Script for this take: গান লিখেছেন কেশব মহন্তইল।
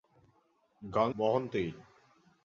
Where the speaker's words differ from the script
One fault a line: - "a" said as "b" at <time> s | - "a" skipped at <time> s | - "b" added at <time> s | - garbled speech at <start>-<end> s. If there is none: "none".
- "লিখেছেন কেশব" skipped at 1.1 s